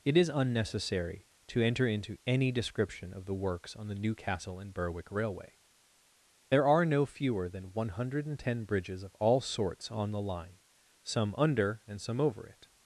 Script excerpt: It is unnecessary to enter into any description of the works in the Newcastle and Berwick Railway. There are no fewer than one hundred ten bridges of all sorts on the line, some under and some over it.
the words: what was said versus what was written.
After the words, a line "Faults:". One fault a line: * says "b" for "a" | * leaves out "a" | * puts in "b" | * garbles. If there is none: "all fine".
It is unnecessary to enter into any description of the works on the Newcastle and Berwick Railway. There are no fewer than one hundred ten bridges of all sorts on the line, some under and some over it.
Faults:
* says "on" for "in"